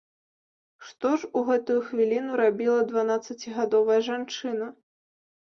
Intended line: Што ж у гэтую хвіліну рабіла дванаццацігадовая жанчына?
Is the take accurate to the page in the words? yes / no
yes